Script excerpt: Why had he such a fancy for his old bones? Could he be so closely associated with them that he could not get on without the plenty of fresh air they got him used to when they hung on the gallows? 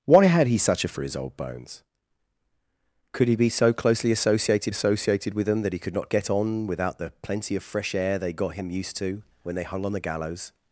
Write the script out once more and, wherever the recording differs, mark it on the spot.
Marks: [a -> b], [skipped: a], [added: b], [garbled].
Why had he such a [skipped: fancy] for his old bones? Could he be so closely associated [added: associated] with them that he could not get on without the plenty of fresh air they got him used to when they hung on the gallows?